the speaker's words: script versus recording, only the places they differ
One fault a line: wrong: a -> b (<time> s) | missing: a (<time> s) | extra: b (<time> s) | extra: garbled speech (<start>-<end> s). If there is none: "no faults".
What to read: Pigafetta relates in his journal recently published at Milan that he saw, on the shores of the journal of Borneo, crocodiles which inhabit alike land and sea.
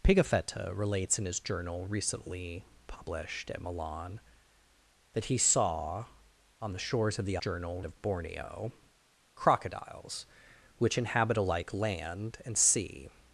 no faults